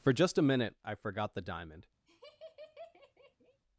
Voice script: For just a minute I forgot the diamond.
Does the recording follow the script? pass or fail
pass